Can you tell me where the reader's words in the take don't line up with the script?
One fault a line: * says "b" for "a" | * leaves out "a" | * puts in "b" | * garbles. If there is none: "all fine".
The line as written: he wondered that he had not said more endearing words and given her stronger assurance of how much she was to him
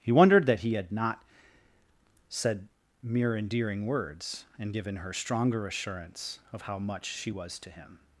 * says "mere" for "more"